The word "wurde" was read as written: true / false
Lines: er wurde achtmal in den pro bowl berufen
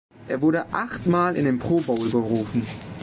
true